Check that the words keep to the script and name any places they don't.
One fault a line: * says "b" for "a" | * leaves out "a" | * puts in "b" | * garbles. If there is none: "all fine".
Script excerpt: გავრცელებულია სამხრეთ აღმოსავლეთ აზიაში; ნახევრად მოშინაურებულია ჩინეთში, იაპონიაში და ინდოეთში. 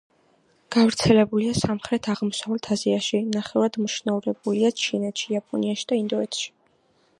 all fine